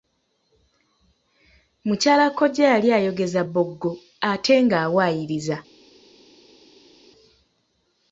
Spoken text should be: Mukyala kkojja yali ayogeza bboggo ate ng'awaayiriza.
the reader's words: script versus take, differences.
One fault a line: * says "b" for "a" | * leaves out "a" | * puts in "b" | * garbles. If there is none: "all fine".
all fine